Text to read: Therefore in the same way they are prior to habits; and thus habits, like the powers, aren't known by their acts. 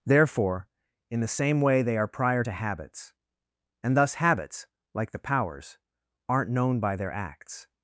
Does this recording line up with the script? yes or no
yes